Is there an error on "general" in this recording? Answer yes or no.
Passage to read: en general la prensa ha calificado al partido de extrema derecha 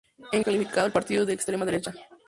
yes